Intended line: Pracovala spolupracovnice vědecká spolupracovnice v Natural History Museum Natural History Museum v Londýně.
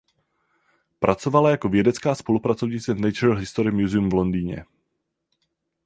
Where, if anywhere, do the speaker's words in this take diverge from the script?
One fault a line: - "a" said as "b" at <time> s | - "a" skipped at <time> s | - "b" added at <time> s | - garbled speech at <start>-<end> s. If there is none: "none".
- "spolupracovnice" said as "jako" at 1.5 s
- "Natural History Museum" skipped at 4.1 s